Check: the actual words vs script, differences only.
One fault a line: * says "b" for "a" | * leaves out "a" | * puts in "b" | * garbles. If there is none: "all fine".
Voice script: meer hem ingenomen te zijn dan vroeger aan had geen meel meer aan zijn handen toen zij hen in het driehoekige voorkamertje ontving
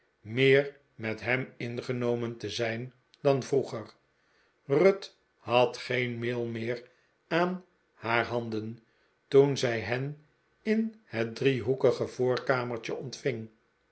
* puts in "met"
* says "ruth" for "aan"
* says "haar" for "zijn"